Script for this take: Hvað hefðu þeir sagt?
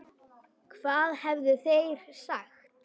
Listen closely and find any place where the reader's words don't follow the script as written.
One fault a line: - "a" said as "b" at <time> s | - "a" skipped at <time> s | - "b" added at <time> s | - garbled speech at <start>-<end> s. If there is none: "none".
none